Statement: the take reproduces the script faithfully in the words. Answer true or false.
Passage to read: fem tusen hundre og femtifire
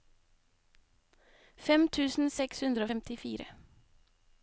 false